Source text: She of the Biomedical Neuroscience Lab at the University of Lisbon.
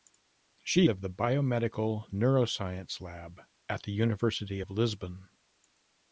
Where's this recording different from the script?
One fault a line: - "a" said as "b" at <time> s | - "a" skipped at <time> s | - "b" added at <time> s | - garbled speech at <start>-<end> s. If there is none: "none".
none